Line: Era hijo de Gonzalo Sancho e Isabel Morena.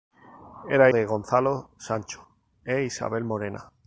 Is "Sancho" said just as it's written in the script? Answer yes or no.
yes